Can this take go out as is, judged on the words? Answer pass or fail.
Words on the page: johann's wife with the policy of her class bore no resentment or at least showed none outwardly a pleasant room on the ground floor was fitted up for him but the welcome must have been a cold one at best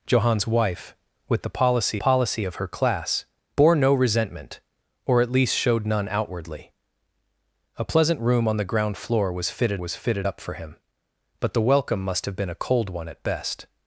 fail